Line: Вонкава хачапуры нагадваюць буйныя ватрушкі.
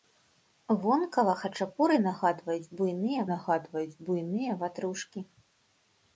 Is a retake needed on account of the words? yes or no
yes